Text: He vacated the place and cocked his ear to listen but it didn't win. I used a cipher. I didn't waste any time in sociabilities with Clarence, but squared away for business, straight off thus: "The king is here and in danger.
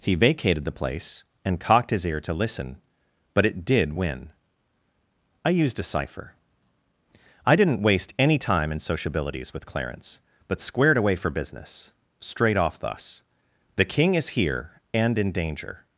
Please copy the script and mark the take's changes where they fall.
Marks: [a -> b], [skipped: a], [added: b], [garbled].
He vacated the place and cocked his ear to listen but it [didn't -> did] win. I used a cipher. I didn't waste any time in sociabilities with Clarence, but squared away for business, straight off thus: "The king is here and in danger.